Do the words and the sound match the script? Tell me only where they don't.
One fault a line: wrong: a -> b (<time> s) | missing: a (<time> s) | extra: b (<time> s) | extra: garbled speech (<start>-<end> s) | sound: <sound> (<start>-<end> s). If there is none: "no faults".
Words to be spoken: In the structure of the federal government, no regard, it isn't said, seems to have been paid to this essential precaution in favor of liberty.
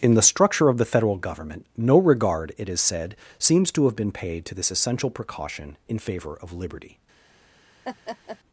wrong: isn't -> is (2.7 s)
sound: laugh (7.8-8.4 s)